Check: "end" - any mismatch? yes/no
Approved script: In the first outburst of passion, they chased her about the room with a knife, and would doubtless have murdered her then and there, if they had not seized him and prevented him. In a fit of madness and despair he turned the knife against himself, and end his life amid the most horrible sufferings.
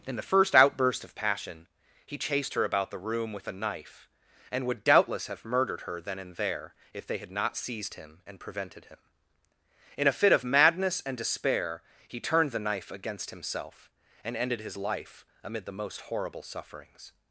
yes